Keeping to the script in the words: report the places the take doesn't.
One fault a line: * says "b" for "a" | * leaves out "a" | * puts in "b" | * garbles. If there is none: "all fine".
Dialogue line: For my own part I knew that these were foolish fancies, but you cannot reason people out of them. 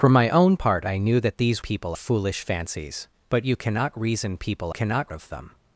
* says "people" for "were"
* says "cannot" for "out"